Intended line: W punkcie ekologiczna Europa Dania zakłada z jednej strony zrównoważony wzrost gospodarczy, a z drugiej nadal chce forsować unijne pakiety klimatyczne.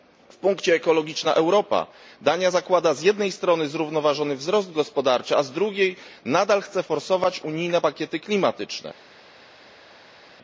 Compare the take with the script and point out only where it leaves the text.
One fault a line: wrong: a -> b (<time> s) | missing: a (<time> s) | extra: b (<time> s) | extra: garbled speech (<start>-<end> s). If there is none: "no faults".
no faults